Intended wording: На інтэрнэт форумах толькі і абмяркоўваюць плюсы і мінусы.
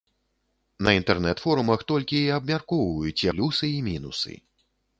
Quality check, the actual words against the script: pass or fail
pass